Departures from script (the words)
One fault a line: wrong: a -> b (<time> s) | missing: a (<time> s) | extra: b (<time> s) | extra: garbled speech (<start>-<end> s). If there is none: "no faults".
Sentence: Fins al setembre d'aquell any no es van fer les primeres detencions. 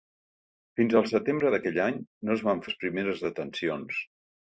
missing: fer (2.6 s)